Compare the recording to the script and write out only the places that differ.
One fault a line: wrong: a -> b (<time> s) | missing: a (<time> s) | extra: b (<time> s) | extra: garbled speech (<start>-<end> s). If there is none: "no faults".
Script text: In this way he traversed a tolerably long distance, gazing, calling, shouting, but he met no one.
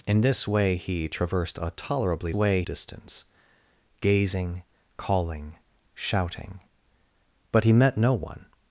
wrong: long -> way (2.3 s)